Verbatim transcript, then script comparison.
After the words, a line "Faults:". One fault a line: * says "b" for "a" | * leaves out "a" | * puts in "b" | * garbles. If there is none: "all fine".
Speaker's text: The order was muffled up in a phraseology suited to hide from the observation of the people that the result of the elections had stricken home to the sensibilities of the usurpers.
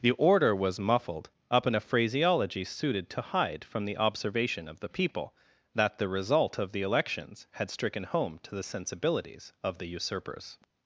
The order was muffled up in a phraseology suited to hide from the observation of the people that the result of the elections had stricken home to the sensibilities of the usurpers.
Faults:
all fine